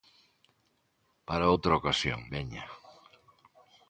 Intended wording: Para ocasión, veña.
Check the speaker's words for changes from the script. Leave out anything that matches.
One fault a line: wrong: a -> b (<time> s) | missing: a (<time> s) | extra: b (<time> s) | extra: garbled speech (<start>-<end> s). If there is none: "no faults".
extra: outra (1.5 s)